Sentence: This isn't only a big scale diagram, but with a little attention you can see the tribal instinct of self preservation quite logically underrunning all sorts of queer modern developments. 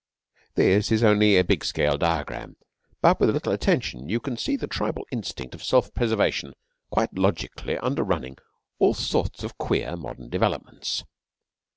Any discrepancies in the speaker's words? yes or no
yes